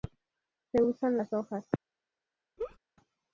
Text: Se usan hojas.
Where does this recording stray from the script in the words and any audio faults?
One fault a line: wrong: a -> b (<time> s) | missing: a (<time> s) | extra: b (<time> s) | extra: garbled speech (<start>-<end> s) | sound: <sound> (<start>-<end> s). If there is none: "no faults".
extra: las (1.1 s)
sound: laugh (2.6-2.8 s)